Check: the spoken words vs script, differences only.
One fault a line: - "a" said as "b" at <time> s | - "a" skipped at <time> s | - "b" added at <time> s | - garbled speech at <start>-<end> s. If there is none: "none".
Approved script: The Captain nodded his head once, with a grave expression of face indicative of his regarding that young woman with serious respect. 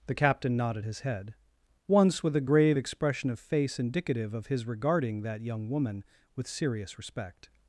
none